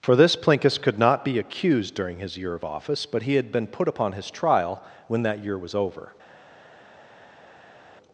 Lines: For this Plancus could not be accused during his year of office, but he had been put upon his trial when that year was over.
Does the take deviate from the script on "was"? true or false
false